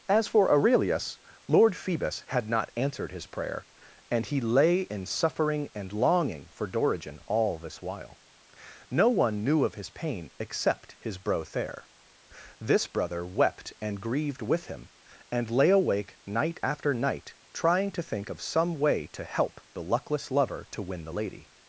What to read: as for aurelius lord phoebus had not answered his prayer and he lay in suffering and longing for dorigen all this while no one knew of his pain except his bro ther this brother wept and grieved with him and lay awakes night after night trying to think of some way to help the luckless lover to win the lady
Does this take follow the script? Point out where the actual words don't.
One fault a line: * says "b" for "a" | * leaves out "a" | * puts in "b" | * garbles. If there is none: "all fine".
* says "awake" for "awakes"